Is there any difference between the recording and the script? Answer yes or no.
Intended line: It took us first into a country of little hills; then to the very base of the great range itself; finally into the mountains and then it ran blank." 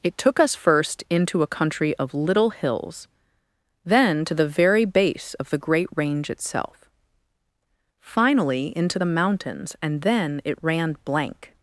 no